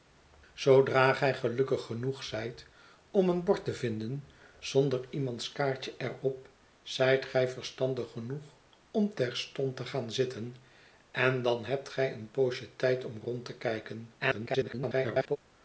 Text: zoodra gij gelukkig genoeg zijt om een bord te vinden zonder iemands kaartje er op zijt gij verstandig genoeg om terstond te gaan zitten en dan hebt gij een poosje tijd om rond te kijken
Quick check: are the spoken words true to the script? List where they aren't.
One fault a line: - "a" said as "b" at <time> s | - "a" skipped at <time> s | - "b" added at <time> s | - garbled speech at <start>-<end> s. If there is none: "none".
- garbled speech at 14.2-15.4 s